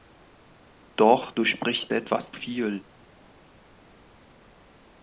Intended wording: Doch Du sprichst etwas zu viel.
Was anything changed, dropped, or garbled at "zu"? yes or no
yes